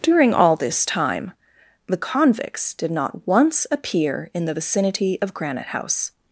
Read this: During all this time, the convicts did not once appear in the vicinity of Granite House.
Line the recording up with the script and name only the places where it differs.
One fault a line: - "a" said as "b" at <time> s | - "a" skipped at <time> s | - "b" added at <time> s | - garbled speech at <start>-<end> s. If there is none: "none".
none